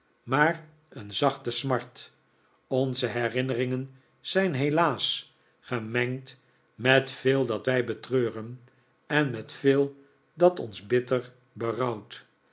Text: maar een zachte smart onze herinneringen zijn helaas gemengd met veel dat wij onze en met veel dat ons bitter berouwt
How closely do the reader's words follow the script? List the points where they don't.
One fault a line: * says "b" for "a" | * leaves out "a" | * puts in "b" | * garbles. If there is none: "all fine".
* says "betreuren" for "onze"